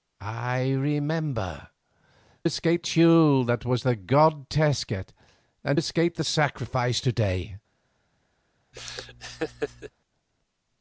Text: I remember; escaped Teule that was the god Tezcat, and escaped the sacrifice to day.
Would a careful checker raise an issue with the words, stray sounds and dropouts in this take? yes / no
yes